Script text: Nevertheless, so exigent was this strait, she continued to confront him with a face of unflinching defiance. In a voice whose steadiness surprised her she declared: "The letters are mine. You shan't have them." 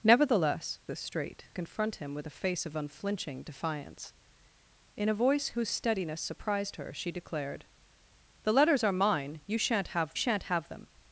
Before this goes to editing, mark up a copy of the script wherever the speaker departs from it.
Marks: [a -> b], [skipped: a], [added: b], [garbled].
Nevertheless, [skipped: so exigent was] this strait, [skipped: she continued to] confront him with a face of unflinching defiance. In a voice whose steadiness surprised her she declared: "The letters are mine. You shan't have [added: shan't have] them."